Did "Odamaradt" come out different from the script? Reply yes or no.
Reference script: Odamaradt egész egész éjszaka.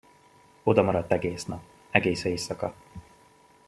no